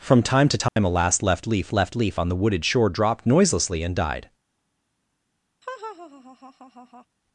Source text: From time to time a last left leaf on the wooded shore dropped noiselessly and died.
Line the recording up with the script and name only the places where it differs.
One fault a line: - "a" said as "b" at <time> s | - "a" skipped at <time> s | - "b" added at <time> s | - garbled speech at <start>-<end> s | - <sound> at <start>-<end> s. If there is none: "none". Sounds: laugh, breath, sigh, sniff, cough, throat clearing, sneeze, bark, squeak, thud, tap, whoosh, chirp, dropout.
- dropout at 0.7-0.8 s
- "left leaf" added at 1.7 s
- laugh at 5.6-7.1 s